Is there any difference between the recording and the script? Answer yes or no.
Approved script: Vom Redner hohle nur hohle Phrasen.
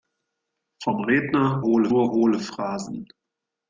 no